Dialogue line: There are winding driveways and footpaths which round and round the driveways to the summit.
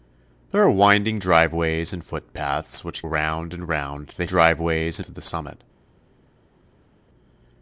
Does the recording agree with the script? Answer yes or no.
yes